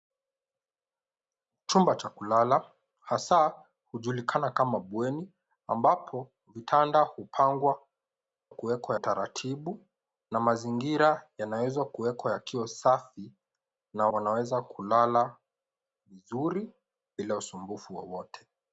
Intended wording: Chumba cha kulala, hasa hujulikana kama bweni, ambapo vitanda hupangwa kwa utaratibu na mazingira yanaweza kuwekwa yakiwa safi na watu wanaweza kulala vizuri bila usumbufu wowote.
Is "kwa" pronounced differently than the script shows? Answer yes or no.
yes